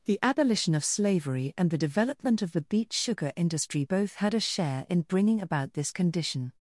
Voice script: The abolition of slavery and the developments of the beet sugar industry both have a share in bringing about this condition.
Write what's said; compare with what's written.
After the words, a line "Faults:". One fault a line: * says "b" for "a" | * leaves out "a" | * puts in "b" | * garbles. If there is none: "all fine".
The abolition of slavery and the development of the beet sugar industry both had a share in bringing about this condition.
Faults:
* says "development" for "developments"
* says "had" for "have"